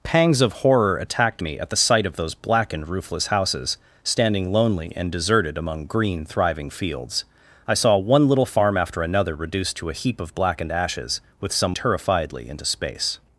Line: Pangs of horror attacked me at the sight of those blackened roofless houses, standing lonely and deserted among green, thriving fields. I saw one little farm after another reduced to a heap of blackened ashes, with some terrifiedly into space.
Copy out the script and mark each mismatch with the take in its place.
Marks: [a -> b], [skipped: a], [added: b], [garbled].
Pangs of horror attacked me at the sight of those blackened roofless houses, standing lonely and deserted among green, thriving fields. I saw one little farm after another reduced to a heap of blackened ashes, with some terrifiedly into space.